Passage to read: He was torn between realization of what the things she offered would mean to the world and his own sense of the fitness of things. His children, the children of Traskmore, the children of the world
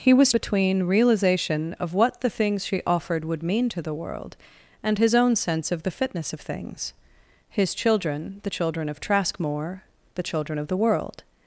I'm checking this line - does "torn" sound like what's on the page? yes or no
no